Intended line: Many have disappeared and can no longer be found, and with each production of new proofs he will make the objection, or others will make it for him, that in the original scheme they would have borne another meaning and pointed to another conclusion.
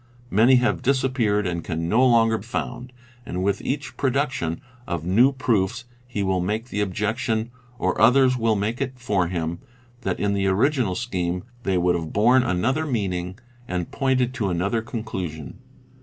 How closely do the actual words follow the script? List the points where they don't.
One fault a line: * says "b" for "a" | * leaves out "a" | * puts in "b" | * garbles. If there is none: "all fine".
* leaves out "be"